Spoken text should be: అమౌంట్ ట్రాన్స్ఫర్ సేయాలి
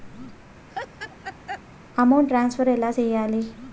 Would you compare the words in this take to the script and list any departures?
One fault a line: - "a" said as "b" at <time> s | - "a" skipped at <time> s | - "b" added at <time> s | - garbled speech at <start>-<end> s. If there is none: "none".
- "ఎలా" added at 2.7 s